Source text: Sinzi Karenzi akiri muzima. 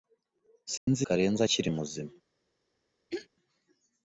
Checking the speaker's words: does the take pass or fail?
pass